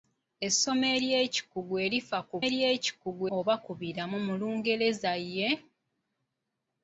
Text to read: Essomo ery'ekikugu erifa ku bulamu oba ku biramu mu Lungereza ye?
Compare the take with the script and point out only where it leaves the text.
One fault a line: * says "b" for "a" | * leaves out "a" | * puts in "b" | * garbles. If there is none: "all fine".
* says "ery'ekikugu" for "bulamu"